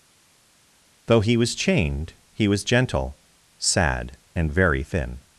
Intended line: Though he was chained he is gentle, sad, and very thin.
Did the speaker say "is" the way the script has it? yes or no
no